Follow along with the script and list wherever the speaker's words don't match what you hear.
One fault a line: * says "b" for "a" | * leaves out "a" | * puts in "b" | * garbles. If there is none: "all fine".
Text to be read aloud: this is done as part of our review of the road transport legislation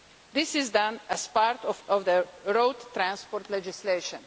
* leaves out "our review"